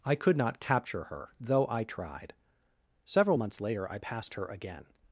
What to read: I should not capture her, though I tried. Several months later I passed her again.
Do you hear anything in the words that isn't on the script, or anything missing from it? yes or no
yes